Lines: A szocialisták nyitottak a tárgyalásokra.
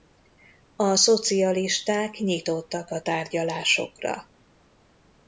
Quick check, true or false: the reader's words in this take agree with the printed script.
true